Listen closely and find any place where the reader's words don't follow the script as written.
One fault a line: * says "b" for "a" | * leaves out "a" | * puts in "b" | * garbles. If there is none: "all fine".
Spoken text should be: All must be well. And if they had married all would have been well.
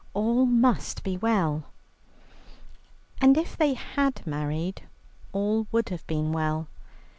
all fine